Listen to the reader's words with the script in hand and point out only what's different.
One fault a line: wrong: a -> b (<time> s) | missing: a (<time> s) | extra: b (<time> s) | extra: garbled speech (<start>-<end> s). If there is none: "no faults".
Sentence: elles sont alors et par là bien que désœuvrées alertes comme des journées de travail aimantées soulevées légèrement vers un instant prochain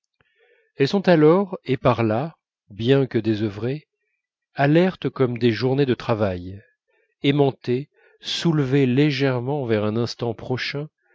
no faults